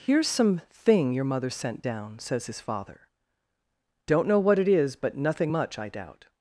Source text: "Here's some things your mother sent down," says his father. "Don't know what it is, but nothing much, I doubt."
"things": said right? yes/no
no